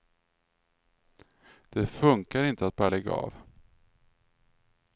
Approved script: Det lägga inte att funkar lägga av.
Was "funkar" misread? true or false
true